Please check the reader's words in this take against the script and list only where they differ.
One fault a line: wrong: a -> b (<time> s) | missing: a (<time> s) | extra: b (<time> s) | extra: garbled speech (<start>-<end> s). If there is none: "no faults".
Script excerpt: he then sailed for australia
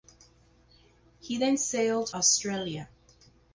missing: for (2.1 s)